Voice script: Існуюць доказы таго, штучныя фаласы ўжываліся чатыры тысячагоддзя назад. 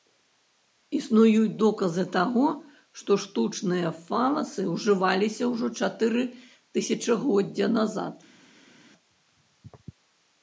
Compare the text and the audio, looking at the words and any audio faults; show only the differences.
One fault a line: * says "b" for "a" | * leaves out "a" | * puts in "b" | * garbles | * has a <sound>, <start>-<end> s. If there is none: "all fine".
* puts in "што"
* puts in "ўжо"